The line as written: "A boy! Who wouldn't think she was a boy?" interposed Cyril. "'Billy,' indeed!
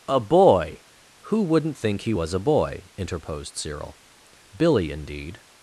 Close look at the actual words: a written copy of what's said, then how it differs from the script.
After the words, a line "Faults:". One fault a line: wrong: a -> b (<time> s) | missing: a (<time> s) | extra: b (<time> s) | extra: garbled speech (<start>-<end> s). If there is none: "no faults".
"A boy! Who wouldn't think he was a boy?" interposed Cyril. "'Billy,' indeed!
Faults:
wrong: she -> he (2.0 s)